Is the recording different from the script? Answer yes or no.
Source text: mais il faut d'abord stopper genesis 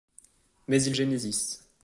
yes